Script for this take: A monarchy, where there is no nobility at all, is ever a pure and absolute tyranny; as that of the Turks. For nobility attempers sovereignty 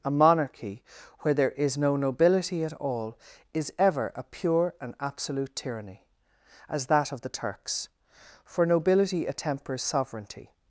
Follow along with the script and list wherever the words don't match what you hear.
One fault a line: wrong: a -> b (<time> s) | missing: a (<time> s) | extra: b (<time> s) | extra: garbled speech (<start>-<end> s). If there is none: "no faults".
no faults